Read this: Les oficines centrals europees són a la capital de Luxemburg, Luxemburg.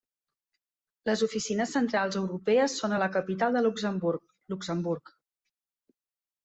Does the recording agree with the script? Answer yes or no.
yes